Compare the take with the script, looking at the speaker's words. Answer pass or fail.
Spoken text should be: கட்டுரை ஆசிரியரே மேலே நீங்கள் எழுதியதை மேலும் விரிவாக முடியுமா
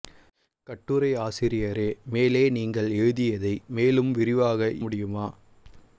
pass